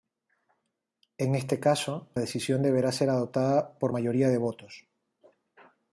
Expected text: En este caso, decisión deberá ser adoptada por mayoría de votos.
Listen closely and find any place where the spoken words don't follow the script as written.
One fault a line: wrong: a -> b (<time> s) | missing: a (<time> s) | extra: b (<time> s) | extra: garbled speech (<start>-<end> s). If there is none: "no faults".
no faults